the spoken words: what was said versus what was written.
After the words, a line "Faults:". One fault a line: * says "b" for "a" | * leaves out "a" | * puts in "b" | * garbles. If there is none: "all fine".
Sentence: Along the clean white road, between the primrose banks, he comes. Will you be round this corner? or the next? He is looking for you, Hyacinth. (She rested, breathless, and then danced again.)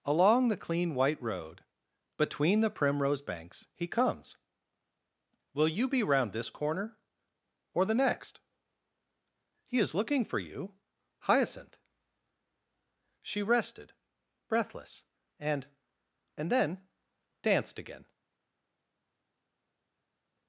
Along the clean white road, between the primrose banks, he comes. Will you be round this corner? or the next? He is looking for you, Hyacinth. (She rested, breathless, and and then danced again.)
Faults:
* puts in "and"